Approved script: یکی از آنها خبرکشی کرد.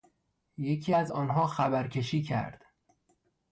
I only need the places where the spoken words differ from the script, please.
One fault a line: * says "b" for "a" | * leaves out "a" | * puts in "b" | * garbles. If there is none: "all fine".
all fine